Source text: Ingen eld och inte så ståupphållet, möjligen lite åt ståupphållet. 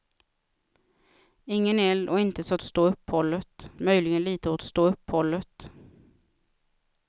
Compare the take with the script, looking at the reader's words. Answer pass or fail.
pass